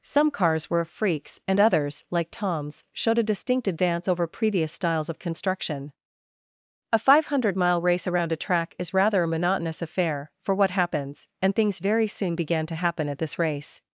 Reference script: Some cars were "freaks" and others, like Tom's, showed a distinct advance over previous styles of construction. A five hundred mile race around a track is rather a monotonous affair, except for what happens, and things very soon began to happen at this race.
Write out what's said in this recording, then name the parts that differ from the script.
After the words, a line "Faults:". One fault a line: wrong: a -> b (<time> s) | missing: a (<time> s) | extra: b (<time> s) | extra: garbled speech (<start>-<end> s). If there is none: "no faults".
Some cars were "freaks" and others, like Tom's, showed a distinct advance over previous styles of construction. A five hundred mile race around a track is rather a monotonous affair, for what happens, and things very soon began to happen at this race.
Faults:
missing: except (10.3 s)